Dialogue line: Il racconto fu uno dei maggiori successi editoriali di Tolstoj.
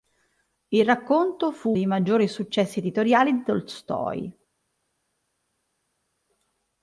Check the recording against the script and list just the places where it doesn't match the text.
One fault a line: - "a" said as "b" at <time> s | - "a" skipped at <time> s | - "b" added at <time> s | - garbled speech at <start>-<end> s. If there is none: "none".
- "uno" skipped at 1.8 s